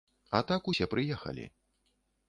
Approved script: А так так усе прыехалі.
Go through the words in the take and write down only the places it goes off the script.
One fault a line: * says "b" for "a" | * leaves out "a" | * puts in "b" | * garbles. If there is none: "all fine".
* leaves out "так"